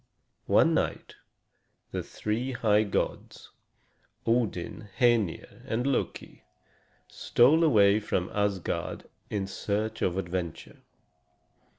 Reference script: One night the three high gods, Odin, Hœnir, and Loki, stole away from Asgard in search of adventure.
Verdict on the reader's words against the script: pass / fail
pass